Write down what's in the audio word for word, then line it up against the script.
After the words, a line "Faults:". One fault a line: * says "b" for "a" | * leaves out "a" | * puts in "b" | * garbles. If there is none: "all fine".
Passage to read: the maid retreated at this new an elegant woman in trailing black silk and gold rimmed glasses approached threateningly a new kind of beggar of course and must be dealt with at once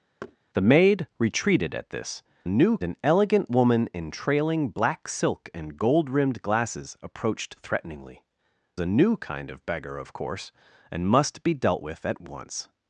the maid retreated at this new an elegant woman in trailing black silk and gold rimmed glasses approached threateningly a new kind of beggar of course and must be dealt with at once
Faults:
all fine